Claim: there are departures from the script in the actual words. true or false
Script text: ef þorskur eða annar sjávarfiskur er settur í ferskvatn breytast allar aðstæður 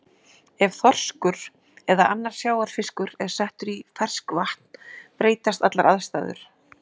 false